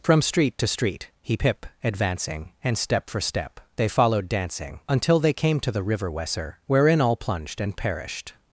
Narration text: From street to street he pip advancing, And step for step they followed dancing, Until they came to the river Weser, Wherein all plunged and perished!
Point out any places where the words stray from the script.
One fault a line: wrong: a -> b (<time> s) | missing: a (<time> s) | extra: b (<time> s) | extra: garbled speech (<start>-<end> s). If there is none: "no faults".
no faults